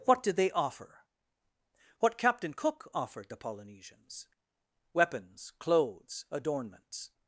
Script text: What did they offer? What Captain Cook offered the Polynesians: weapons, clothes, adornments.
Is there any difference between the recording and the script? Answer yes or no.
no